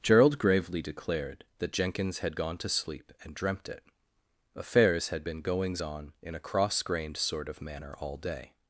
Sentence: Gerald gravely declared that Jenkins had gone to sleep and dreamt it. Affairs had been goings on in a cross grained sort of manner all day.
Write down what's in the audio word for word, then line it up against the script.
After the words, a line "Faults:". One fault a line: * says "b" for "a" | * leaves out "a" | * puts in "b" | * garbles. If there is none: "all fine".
Gerald gravely declared that Jenkins had gone to sleep and dreamt it. Affairs had been goings on in a cross grained sort of manner all day.
Faults:
all fine